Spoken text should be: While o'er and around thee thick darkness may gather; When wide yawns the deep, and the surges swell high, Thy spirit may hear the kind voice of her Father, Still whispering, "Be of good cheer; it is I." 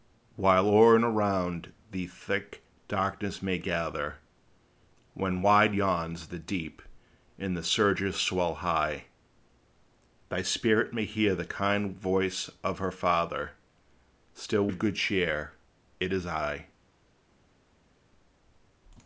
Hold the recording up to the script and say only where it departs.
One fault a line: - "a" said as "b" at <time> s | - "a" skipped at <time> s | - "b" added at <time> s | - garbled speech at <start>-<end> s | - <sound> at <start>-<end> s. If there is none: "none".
- "whispering Be" skipped at 14.7 s